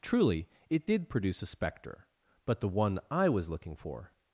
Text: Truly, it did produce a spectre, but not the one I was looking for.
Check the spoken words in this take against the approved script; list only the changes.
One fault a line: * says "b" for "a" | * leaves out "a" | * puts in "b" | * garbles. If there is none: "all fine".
* leaves out "not"